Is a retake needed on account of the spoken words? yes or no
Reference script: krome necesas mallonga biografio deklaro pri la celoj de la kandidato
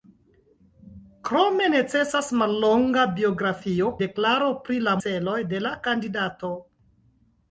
no